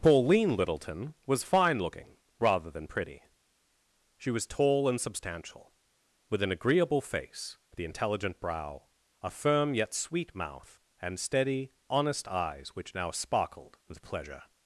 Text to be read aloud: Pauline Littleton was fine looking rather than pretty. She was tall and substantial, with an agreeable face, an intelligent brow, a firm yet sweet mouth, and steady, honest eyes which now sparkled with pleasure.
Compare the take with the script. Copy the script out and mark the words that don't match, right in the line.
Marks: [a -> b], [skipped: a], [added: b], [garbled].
Pauline Littleton was fine looking rather than pretty. She was tall and substantial, with an agreeable face, [an -> the] intelligent brow, a firm yet sweet mouth, and steady, honest eyes which now sparkled with pleasure.